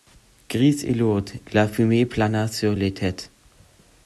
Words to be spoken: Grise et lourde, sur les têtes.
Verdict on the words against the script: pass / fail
fail